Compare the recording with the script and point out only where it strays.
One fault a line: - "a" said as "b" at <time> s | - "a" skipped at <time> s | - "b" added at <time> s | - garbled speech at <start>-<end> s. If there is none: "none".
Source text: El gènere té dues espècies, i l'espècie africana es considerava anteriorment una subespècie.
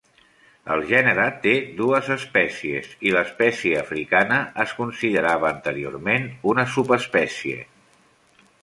none